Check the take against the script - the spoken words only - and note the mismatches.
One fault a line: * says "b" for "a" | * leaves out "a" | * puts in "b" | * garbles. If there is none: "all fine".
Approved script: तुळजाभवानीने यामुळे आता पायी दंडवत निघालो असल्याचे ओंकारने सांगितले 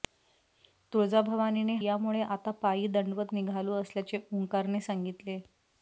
all fine